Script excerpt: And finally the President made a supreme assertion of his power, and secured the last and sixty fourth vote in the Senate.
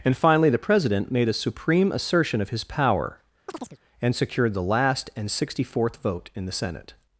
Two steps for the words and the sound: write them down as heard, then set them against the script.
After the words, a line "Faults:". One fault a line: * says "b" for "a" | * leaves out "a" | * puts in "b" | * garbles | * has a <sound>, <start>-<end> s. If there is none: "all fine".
And finally the President made a supreme assertion of his power, and secured the last and sixty fourth vote in the Senate.
Faults:
* has a chirp, 3.5-3.8 s